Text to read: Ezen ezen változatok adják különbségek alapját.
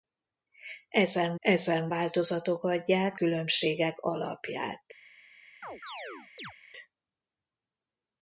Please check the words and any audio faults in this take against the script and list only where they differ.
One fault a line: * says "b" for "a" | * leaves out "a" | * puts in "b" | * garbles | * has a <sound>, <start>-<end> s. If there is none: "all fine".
* has a chirp, 5.6-6.5 s